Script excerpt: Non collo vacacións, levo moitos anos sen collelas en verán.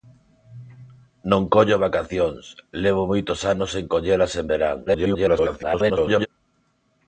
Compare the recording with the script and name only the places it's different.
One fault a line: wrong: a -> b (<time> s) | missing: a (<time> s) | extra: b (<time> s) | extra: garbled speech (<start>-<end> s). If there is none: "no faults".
extra: garbled speech (4.9-6.3 s)